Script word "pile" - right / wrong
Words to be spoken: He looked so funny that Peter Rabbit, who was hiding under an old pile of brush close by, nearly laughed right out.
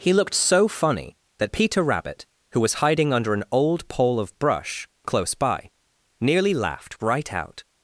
wrong